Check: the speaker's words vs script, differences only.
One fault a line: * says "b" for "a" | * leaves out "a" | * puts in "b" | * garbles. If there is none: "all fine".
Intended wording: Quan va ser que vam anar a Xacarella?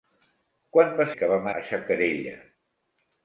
* leaves out "ser"
* leaves out "anar"